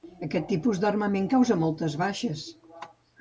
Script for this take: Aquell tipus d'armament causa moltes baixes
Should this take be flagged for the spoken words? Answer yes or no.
yes